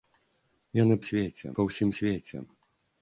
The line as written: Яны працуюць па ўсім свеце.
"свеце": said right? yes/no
yes